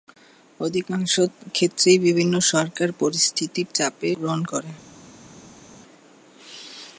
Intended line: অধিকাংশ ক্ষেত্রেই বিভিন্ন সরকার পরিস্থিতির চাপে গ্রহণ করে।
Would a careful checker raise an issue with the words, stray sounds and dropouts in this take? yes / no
no